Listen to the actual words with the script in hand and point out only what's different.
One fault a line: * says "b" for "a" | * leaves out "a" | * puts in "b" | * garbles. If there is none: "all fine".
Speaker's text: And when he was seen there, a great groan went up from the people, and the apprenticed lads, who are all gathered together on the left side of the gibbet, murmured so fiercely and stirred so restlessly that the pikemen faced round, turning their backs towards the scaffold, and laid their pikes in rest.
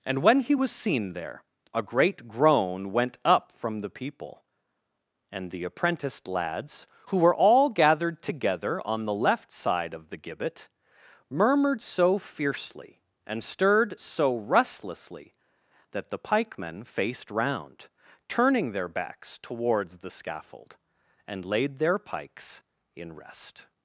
* says "were" for "are"